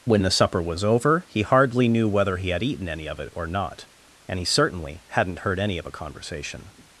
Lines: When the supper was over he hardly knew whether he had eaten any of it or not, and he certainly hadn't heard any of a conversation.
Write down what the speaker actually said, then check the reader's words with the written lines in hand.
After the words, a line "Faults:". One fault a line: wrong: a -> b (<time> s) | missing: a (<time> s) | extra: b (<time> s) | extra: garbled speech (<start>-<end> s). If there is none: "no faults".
When the supper was over he hardly knew whether he had eaten any of it or not, and he certainly hadn't heard any of a conversation.
Faults:
no faults